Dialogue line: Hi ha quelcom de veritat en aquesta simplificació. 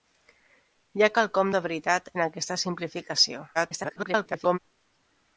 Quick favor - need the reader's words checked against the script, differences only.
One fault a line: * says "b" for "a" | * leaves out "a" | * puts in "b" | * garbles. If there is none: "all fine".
* garbles